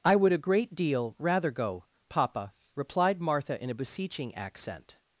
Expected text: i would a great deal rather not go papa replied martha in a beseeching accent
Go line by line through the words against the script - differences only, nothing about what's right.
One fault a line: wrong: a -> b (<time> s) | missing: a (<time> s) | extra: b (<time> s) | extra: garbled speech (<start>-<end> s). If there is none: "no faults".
missing: not (1.5 s)